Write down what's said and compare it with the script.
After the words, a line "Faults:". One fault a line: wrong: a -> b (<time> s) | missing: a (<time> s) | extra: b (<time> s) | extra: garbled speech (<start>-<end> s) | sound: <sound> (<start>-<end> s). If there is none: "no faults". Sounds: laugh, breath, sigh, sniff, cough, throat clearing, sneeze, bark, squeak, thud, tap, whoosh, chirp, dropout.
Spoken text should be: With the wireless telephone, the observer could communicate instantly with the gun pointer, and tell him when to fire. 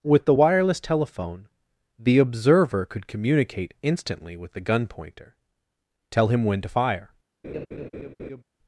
With the wireless telephone, the observer could communicate instantly with the gun pointer, tell him when to fire.
Faults:
missing: and (5.4 s)
sound: laugh (7.4-8.4 s)